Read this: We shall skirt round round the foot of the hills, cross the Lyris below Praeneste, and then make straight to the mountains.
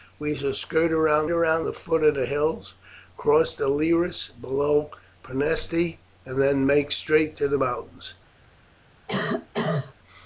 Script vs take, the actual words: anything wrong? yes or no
no